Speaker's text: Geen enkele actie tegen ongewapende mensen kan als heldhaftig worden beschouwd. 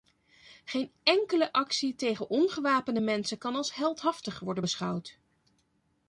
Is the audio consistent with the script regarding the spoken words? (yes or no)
yes